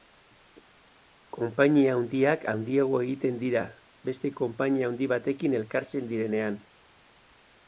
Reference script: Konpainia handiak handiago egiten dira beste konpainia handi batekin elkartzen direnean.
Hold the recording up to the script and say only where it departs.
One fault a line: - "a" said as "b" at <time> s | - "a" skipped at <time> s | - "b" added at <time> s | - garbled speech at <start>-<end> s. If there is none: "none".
none